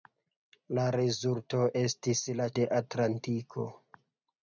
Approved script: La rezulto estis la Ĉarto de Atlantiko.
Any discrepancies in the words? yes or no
yes